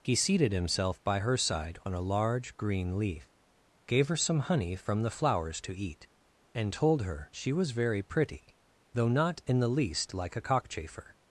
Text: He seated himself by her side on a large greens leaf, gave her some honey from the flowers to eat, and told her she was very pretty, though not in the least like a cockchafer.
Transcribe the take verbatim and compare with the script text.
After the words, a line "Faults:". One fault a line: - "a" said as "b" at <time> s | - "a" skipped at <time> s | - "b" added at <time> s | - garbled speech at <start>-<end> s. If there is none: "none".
He seated himself by her side on a large green leaf, gave her some honey from the flowers to eat, and told her she was very pretty, though not in the least like a cockchafer.
Faults:
- "greens" said as "green" at 2.6 s